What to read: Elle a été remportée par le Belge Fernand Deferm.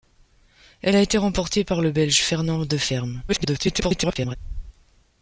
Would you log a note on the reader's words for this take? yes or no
yes